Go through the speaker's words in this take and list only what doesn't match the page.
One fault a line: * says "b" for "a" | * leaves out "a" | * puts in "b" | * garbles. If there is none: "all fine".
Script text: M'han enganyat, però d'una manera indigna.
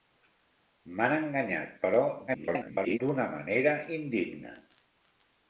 * garbles